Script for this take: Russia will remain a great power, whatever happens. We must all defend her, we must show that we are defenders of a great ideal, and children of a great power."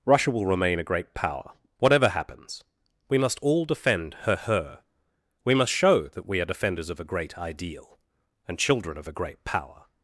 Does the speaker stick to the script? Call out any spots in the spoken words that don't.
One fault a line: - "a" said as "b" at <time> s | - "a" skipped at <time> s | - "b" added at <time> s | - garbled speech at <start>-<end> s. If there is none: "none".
- "her" added at 4.3 s